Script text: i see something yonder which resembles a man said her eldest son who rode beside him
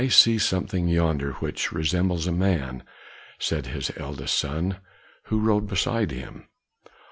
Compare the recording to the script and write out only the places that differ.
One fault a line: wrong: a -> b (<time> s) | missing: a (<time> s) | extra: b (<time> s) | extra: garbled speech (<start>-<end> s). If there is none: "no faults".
wrong: her -> his (3.7 s)